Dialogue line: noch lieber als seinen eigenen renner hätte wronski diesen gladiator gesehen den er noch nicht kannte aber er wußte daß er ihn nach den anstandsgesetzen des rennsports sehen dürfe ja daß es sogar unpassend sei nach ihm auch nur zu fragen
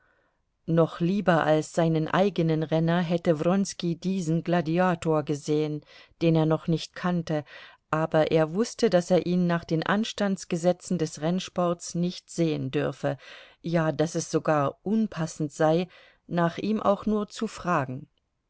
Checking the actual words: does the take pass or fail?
fail